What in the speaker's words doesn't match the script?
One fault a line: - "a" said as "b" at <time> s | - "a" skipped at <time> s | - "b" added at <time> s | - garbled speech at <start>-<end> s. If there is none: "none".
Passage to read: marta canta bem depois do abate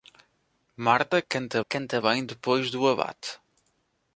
- "canta" added at 1.6 s